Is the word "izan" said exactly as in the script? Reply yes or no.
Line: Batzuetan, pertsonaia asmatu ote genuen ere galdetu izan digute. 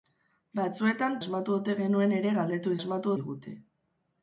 no